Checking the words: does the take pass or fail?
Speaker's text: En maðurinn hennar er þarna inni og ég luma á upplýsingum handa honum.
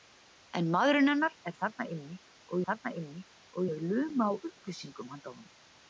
fail